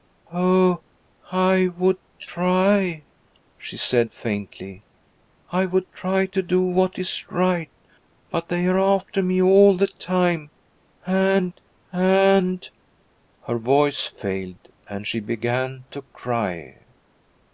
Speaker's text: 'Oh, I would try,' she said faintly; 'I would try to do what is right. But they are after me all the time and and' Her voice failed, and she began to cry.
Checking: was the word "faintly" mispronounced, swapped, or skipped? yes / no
no